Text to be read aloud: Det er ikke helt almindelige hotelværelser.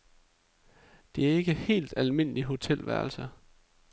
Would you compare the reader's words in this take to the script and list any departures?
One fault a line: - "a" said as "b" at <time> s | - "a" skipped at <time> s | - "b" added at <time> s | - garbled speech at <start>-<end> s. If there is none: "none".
none